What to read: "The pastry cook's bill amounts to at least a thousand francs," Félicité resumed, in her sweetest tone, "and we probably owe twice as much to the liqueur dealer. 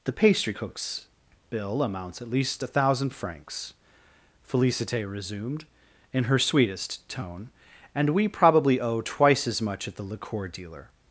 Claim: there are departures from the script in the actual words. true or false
true